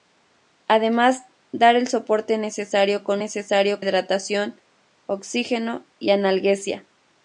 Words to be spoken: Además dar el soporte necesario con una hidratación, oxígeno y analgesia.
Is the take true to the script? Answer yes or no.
no